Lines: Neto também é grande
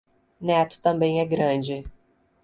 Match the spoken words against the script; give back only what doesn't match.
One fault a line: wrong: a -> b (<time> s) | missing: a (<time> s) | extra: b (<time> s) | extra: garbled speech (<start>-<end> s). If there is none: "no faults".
no faults